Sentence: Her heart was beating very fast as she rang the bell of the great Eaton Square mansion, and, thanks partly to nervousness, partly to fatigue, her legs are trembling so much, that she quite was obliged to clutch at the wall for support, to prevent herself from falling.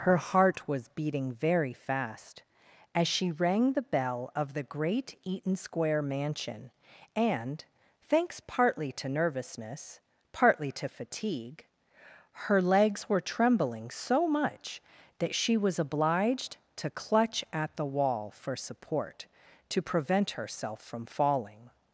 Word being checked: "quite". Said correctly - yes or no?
no